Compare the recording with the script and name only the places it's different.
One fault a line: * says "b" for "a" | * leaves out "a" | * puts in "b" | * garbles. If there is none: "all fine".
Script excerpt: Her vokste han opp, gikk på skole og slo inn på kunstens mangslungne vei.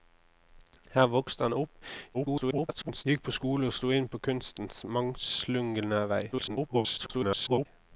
* garbles
* garbles